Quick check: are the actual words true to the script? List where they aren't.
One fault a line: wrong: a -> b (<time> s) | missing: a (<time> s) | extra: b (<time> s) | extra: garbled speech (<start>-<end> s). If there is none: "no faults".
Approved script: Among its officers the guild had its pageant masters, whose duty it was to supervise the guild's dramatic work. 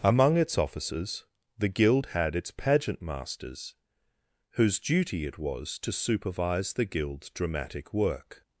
no faults